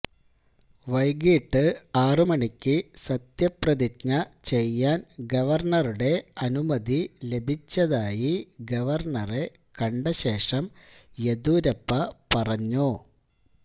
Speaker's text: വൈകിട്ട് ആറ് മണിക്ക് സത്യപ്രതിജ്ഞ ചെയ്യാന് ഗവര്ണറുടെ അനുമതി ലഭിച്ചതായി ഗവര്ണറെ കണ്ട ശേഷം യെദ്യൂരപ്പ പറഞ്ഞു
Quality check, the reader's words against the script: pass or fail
pass